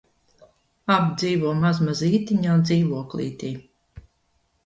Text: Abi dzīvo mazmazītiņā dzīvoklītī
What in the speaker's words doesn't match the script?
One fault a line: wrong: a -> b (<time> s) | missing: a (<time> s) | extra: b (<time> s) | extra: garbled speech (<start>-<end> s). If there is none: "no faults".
no faults